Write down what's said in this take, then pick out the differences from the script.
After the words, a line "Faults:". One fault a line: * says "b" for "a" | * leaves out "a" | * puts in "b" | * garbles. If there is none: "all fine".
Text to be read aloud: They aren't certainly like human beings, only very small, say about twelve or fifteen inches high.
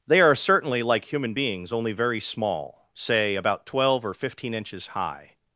They are certainly like human beings, only very small, say about twelve or fifteen inches high.
Faults:
* says "are" for "aren't"